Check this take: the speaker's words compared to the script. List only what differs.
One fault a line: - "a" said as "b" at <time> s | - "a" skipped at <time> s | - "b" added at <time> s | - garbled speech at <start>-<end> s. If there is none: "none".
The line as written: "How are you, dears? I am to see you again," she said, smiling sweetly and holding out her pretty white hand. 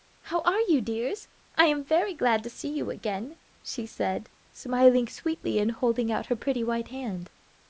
- "very glad" added at 1.8 s